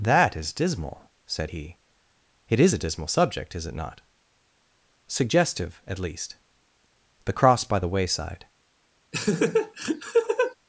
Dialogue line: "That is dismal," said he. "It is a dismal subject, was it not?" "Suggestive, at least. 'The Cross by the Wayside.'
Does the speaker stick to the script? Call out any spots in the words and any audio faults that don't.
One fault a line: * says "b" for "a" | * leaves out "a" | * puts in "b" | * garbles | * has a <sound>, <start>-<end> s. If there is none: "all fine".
* says "is" for "was"
* has a laugh, 9.1-10.5 s